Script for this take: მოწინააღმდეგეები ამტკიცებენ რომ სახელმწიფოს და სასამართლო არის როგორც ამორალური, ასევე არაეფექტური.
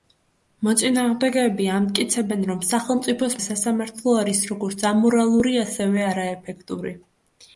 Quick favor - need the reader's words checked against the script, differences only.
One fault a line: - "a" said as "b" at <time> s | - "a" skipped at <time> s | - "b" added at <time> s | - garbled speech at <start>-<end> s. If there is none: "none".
none